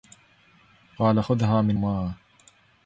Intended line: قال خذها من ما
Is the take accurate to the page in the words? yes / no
yes